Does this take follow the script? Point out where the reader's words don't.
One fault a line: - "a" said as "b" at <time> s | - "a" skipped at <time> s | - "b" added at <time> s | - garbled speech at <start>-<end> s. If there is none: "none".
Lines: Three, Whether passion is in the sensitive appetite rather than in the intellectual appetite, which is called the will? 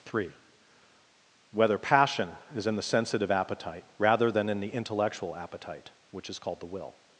none